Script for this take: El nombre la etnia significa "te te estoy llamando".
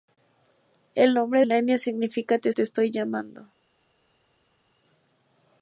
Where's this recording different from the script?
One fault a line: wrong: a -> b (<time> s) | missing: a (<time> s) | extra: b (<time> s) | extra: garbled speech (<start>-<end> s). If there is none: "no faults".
no faults